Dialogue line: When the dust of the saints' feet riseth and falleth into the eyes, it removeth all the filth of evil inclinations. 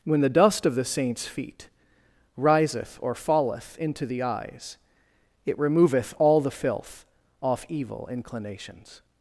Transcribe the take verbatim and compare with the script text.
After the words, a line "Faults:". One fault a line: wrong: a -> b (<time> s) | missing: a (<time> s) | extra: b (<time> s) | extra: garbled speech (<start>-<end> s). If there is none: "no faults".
When the dust of the saints' feet riseth or falleth into the eyes, it removeth all the filth off evil inclinations.
Faults:
wrong: and -> or (3.0 s)
wrong: of -> off (7.4 s)